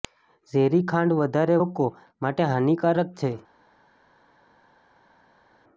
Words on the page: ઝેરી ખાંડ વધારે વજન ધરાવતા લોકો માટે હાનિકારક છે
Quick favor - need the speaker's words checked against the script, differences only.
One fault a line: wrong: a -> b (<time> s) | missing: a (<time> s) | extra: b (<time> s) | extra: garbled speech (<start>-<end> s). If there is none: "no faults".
missing: વજન ધરાવતા (1.6 s)